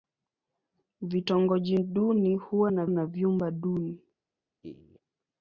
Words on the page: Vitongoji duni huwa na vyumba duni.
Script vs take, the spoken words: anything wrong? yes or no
yes